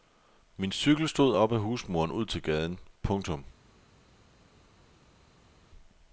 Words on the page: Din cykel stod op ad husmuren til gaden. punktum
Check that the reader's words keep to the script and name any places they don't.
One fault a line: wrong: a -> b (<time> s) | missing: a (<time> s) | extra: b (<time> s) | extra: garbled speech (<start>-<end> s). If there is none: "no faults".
wrong: Din -> Min (0.6 s)
extra: ud (2.1 s)